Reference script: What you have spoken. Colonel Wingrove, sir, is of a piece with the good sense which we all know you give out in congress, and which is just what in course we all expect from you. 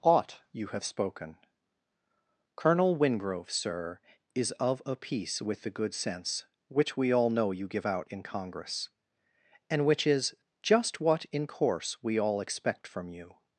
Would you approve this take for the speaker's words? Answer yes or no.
no